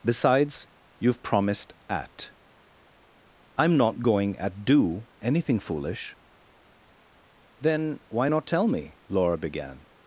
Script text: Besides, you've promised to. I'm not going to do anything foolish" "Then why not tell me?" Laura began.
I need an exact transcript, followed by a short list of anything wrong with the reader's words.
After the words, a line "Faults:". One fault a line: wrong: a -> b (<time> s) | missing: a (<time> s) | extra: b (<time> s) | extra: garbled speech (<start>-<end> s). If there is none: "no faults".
Besides, you've promised at. I'm not going at do anything foolish" "Then why not tell me?" Laura began.
Faults:
wrong: to -> at (1.9 s)
wrong: to -> at (4.4 s)